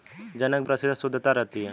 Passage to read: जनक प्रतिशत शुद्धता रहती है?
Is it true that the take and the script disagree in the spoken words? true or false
false